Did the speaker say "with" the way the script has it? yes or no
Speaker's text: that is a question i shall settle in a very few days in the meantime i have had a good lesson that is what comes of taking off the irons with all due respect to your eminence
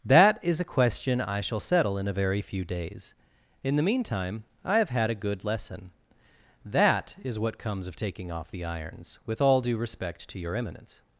yes